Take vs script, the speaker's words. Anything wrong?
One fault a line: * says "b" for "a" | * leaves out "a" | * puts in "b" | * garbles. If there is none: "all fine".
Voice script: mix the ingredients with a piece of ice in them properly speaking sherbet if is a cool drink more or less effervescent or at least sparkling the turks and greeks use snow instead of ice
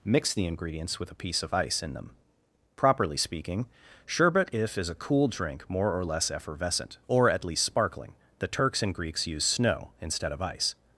all fine